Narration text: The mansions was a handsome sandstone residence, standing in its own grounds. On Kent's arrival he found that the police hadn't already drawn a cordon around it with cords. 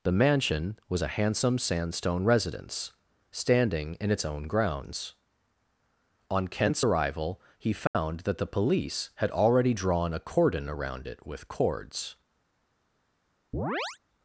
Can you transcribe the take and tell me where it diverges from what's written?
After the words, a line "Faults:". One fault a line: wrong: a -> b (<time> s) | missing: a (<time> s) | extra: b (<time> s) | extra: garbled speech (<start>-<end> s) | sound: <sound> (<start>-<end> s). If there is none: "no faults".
The mansion was a handsome sandstone residence, standing in its own grounds. On Kent's arrival he found that the police had already drawn a cordon around it with cords.
Faults:
wrong: mansions -> mansion (0.1 s)
sound: dropout (7.9-7.9 s)
wrong: hadn't -> had (9.2 s)
sound: chirp (13.5-14.0 s)